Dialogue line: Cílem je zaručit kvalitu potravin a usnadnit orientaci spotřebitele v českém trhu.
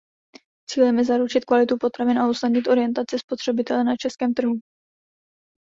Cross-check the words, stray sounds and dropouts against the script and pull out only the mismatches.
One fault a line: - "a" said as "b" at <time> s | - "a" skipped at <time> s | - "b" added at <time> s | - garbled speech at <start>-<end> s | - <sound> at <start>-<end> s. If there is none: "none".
- "v" said as "na" at 3.8 s